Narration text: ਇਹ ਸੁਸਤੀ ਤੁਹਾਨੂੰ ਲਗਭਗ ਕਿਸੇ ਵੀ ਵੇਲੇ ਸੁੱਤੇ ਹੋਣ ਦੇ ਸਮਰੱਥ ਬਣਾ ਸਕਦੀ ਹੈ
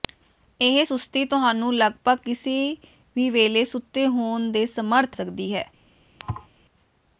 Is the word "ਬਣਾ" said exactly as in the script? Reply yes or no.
no